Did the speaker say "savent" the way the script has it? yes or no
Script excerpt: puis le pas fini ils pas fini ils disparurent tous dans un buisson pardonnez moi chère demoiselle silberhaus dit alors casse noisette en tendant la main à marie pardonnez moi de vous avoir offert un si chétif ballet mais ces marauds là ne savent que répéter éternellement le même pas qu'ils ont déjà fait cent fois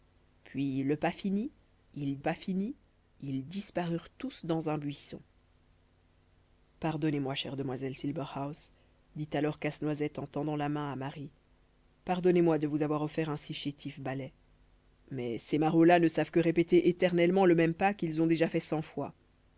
yes